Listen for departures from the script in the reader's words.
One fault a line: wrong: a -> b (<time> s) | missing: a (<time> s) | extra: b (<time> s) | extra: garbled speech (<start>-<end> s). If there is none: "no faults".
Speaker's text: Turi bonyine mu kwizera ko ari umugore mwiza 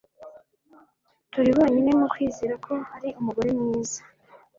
no faults